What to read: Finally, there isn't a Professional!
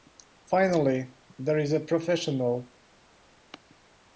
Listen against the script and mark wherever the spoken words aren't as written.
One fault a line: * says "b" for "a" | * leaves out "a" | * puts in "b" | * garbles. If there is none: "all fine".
* says "is" for "isn't"